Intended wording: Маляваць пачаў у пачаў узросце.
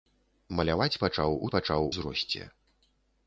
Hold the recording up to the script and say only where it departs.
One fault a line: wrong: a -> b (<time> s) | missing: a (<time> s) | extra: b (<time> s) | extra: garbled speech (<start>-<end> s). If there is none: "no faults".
no faults